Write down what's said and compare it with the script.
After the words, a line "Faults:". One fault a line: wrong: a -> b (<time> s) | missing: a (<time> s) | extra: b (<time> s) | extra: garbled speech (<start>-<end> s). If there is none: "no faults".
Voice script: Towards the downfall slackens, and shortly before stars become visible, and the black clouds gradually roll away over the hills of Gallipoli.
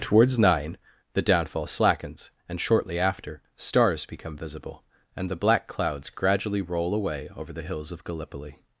Towards nine the downfall slackens, and shortly after stars become visible, and the black clouds gradually roll away over the hills of Gallipoli.
Faults:
extra: nine (0.4 s)
wrong: before -> after (3.0 s)